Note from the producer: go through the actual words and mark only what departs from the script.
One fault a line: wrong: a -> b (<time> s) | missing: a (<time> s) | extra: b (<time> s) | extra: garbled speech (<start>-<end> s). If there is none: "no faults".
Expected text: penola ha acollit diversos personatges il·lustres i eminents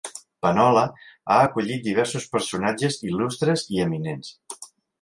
no faults